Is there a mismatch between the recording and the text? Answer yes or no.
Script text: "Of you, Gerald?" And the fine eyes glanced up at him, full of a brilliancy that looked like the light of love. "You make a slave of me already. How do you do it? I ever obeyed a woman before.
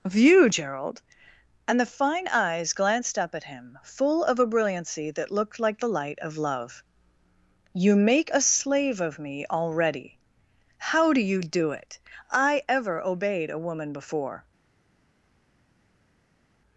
no